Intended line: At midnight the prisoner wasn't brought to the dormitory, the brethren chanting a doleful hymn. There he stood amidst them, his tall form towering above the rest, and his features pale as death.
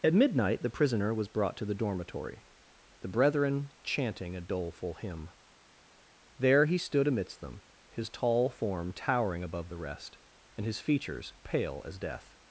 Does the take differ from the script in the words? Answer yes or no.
yes